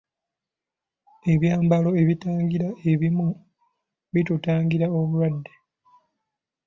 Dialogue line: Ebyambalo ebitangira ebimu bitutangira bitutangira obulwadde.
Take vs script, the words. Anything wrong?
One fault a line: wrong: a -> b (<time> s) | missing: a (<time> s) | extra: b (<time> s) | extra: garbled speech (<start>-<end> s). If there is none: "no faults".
missing: bitutangira (4.9 s)